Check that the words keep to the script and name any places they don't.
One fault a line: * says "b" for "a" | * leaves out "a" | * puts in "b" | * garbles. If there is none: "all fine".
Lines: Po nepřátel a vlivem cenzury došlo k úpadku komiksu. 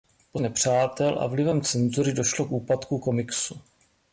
all fine